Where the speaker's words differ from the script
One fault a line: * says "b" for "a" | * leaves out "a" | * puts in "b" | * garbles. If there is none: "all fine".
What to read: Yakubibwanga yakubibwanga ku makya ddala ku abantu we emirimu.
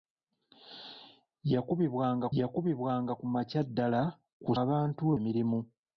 all fine